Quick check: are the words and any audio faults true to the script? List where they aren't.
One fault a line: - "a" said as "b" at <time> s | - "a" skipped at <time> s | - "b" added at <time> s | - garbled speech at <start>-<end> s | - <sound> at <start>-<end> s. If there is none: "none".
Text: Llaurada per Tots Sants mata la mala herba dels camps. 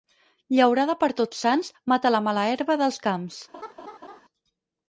- laugh at 3.5-4.2 s